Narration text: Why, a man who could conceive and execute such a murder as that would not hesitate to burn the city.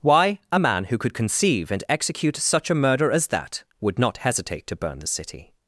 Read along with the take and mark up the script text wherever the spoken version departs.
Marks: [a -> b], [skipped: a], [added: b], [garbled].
Why, a man who could conceive and execute such a murder as that would not hesitate to burn the city.